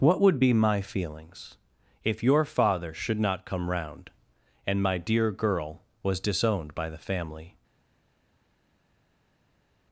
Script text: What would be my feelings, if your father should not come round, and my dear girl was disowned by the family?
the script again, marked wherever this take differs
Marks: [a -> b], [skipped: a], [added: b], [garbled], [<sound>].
What would be my feelings, if your father should not come round, and my dear girl was disowned by the family?